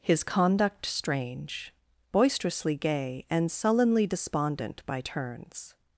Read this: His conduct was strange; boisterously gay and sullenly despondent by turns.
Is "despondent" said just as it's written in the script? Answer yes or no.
yes